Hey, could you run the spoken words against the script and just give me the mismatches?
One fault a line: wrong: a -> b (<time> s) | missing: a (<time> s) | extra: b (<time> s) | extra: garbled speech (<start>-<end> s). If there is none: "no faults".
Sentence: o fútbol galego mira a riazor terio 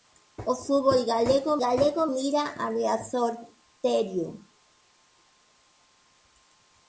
extra: galego (1.6 s)